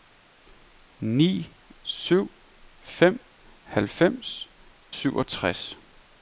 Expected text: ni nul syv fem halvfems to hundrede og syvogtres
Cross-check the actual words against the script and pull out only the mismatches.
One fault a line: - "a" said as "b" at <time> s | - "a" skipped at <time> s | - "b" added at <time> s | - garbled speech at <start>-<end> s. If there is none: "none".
- "nul" skipped at 1.5 s
- "to hundrede og" skipped at 4.5 s